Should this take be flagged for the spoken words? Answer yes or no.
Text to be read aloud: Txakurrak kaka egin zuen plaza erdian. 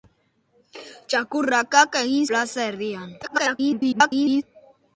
yes